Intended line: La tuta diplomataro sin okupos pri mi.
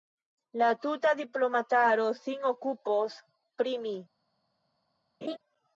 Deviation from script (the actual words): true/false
false